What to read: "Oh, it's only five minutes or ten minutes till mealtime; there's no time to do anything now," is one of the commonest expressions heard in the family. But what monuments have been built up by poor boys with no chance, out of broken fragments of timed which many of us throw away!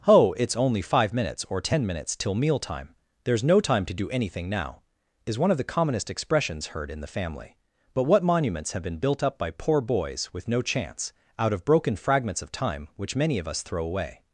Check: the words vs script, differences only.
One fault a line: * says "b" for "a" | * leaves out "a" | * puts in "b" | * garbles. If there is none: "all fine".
* says "time" for "timed"